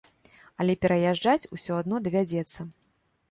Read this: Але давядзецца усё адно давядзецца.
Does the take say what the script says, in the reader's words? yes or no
no